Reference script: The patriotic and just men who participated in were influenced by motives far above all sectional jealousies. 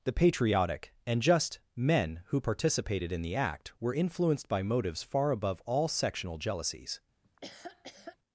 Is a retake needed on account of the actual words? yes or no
yes